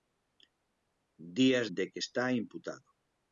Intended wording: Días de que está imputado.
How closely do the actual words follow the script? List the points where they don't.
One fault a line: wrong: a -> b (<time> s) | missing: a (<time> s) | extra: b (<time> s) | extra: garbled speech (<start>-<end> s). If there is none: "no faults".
no faults